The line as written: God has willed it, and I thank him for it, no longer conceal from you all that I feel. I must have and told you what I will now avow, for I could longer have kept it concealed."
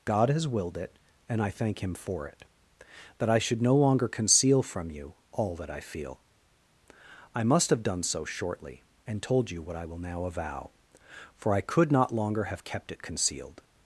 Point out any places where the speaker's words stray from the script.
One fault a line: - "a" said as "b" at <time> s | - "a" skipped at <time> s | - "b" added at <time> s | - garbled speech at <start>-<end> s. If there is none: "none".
- "that I should" added at 3.2 s
- "done so shortly" added at 7.8 s
- "not" added at 11.9 s